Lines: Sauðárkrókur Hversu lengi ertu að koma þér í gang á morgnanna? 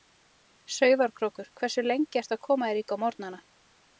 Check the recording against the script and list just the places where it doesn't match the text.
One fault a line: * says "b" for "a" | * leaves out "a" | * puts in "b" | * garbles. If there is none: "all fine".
* leaves out "gang"